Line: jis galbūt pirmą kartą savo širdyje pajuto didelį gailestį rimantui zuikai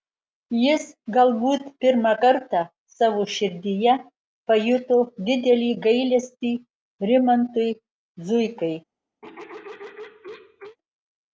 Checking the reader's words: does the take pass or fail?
pass